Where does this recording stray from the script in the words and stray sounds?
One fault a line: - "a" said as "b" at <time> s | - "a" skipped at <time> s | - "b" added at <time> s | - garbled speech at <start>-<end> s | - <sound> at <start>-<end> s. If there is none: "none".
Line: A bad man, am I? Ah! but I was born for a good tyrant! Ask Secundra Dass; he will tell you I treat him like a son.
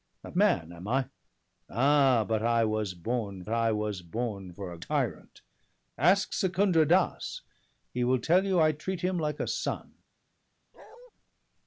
- "bad" skipped at 0.3 s
- "I was born" added at 3.5 s
- "good" skipped at 4.8 s
- bark at 10.7-11.1 s